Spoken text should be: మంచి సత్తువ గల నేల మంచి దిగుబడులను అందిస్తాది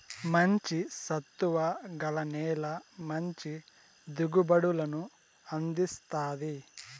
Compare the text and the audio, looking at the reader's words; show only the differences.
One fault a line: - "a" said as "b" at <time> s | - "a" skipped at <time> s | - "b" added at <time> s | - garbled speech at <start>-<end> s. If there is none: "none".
none